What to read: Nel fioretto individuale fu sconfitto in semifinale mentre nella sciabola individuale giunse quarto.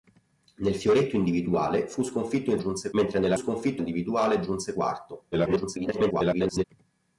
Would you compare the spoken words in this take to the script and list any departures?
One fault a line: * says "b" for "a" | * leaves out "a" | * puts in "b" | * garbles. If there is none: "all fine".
* says "giunse" for "semifinale"
* says "sconfitto" for "sciabola"
* garbles